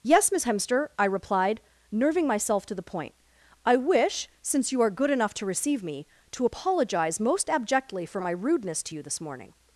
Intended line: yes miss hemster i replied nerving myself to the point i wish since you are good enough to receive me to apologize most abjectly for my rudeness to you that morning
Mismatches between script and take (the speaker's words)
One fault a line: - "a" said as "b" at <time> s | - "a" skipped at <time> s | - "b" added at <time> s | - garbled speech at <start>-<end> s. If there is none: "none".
- "that" said as "this" at 9.0 s